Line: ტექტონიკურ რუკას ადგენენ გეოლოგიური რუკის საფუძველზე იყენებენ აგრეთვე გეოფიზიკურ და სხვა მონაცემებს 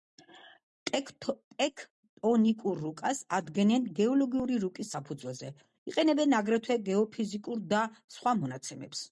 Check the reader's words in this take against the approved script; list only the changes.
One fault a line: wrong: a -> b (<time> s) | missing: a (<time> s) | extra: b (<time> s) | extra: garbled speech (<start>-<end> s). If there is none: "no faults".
no faults